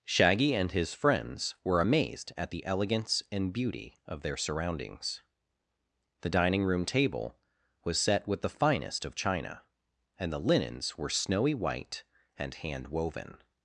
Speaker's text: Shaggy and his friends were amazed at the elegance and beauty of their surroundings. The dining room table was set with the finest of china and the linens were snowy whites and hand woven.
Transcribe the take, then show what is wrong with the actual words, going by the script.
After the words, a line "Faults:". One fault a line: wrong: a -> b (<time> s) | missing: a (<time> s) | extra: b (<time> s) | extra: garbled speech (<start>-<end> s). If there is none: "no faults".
Shaggy and his friends were amazed at the elegance and beauty of their surroundings. The dining room table was set with the finest of china and the linens were snowy white and hand woven.
Faults:
wrong: whites -> white (11.5 s)